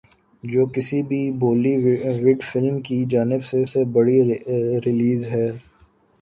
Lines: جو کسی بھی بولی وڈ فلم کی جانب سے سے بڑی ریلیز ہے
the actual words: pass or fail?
pass